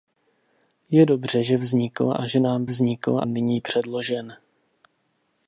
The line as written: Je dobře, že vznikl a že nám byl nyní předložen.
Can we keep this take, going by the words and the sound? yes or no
no